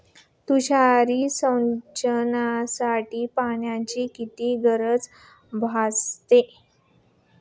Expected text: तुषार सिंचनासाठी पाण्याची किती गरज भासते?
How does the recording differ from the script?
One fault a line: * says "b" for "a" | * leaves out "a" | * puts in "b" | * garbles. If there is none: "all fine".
all fine